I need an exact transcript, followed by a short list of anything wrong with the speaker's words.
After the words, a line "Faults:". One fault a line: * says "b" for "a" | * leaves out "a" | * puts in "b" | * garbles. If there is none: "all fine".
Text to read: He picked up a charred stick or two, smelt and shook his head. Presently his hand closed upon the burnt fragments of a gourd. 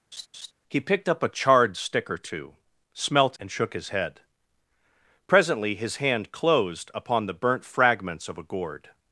He picked up a charred stick or two, smelt and shook his head. Presently his hand closed upon the burnt fragments of a gourd.
Faults:
all fine